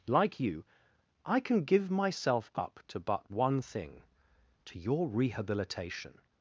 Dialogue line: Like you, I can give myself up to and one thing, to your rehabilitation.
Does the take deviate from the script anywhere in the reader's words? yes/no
yes